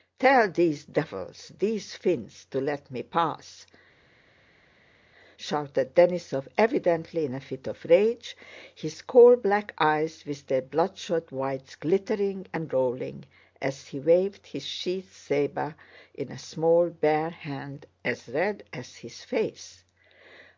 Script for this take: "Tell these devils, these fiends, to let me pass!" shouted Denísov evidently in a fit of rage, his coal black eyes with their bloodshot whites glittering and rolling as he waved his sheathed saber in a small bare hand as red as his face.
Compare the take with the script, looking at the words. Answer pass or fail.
pass